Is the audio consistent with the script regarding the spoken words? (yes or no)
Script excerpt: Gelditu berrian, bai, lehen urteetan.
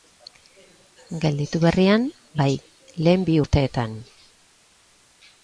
no